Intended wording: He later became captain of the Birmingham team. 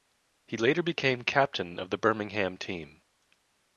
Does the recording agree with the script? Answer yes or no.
yes